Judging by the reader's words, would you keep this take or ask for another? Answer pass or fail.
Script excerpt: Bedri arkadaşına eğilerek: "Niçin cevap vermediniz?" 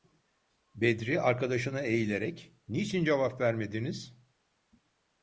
pass